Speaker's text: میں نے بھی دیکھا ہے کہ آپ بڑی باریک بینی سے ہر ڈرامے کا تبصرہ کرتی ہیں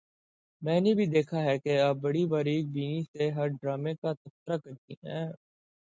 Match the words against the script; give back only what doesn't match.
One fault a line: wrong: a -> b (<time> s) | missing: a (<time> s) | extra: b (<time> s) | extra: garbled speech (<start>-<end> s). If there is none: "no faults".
no faults